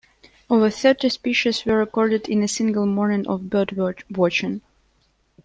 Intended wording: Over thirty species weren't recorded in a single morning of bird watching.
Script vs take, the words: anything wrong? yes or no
yes